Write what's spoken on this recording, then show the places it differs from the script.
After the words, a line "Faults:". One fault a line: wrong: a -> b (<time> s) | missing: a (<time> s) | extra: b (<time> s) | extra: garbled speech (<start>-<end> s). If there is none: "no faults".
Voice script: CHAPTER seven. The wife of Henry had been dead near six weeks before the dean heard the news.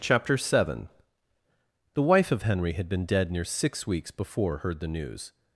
CHAPTER seven. The wife of Henry had been dead near six weeks before heard the news.
Faults:
missing: the dean (4.6 s)